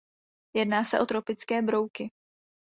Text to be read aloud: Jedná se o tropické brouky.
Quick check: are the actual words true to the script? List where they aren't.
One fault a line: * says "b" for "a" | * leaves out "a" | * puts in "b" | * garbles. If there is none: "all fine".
all fine